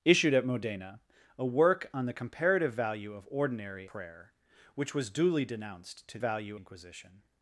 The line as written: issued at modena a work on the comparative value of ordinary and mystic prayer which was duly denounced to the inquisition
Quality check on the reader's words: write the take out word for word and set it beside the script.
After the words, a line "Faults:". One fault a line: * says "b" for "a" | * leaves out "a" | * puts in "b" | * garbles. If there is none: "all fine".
issued at modena a work on the comparative value of ordinary prayer which was duly denounced to value inquisition
Faults:
* leaves out "and mystic"
* says "value" for "the"